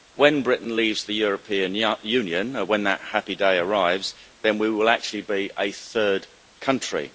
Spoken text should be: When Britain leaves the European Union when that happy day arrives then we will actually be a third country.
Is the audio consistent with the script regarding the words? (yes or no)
yes